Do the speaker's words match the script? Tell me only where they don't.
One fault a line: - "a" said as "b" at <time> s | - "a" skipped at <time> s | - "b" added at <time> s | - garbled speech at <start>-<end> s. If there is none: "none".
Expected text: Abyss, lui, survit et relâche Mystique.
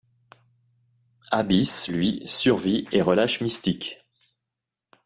none